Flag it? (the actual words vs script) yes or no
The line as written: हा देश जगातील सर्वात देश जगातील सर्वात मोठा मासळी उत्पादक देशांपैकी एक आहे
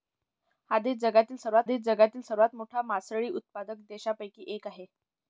no